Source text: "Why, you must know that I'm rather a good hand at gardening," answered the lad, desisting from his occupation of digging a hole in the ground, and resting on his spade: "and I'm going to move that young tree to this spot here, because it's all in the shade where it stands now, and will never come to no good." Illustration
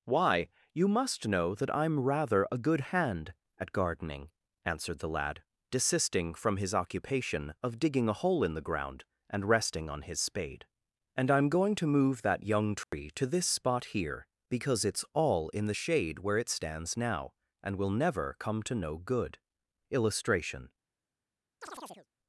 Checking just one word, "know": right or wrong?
right